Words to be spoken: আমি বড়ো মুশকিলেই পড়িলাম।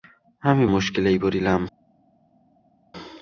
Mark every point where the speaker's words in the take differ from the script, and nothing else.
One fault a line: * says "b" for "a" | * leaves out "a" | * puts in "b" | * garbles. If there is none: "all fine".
* leaves out "বড়ো"